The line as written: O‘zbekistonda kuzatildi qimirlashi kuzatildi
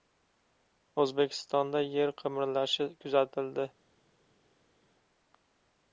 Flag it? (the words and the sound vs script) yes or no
yes